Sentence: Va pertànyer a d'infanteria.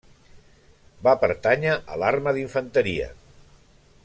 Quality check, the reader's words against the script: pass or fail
fail